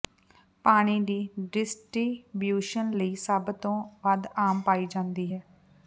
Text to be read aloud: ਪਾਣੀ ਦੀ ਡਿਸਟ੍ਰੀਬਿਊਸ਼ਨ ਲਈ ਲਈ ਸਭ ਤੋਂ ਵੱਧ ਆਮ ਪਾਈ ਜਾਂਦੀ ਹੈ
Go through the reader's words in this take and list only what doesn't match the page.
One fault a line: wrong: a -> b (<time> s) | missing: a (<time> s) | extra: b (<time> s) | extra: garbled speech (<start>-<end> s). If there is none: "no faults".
missing: ਲਈ (3.1 s)